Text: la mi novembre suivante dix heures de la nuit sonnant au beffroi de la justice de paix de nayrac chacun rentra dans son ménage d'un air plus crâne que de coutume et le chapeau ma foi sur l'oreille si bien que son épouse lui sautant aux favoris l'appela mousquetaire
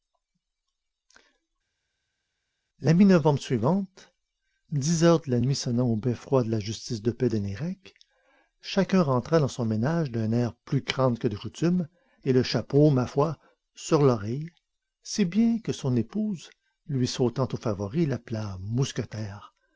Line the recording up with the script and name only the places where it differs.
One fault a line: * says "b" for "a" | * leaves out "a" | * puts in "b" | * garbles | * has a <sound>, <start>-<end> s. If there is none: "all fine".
all fine